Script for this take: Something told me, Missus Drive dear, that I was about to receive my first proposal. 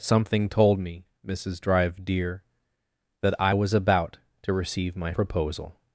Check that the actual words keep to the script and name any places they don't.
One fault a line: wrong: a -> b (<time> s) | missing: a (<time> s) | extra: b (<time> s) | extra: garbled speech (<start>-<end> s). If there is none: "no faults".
missing: first (5.1 s)